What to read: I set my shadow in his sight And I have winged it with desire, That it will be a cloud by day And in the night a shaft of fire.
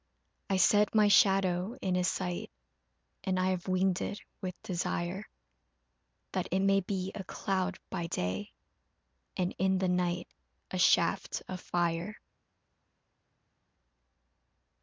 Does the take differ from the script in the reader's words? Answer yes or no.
yes